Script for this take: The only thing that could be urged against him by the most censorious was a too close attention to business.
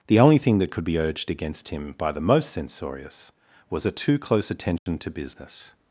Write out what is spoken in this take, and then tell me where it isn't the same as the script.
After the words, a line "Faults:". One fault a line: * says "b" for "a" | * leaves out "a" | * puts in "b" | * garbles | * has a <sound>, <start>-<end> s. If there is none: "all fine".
The only thing that could be urged against him by the most censorious was a too close attention to business.
Faults:
* has a dropout, 4.8-4.9 s